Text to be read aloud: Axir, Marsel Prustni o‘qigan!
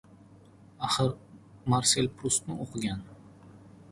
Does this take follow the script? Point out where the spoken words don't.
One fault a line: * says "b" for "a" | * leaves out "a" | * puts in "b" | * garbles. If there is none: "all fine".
all fine